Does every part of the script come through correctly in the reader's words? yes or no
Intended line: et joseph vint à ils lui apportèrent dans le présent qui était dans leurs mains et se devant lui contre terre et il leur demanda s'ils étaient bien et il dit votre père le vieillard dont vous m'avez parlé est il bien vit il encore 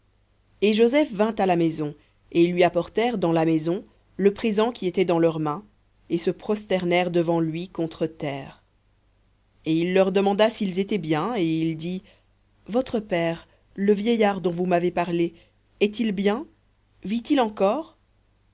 no